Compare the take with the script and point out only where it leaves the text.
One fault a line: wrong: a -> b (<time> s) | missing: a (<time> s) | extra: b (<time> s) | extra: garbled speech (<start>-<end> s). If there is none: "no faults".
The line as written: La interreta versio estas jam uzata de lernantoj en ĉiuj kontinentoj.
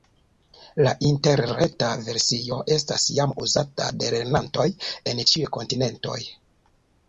no faults